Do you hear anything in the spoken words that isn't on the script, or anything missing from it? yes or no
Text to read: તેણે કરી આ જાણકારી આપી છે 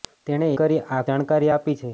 no